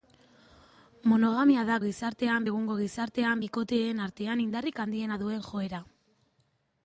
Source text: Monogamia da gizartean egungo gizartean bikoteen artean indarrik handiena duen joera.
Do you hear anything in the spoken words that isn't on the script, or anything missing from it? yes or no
no